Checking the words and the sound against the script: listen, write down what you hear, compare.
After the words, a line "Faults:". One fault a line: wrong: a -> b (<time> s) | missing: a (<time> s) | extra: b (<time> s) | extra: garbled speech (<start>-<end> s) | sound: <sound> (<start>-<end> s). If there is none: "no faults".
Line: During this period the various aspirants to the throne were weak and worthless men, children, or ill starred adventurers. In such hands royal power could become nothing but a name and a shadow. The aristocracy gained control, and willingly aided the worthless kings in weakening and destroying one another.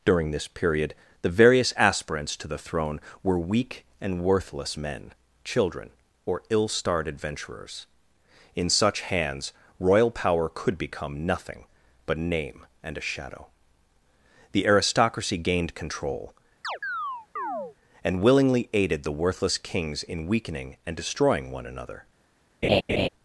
During this period the various aspirants to the throne were weak and worthless men, children, or ill starred adventurers. In such hands royal power could become nothing but name and a shadow. The aristocracy gained control, and willingly aided the worthless kings in weakening and destroying one another.
Faults:
missing: a (12.2 s)
sound: chirp (16.6-17.8 s)
sound: laugh (22.6-23.1 s)